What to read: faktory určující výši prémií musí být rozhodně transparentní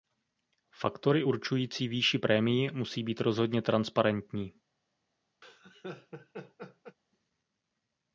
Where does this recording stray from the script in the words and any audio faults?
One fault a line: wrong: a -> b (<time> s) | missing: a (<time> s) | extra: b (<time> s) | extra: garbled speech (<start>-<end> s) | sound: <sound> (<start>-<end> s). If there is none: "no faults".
sound: laugh (5.4-7.0 s)